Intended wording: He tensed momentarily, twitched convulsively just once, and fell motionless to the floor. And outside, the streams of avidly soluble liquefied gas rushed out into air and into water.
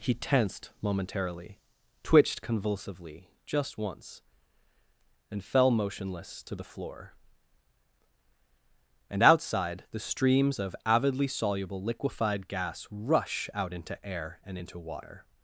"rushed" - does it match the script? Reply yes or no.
no